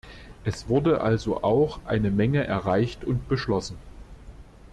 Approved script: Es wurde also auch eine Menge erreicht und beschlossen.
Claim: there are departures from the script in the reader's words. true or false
false